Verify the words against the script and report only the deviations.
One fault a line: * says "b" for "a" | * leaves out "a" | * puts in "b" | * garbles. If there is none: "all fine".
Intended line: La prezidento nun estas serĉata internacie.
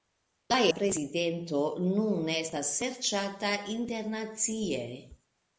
all fine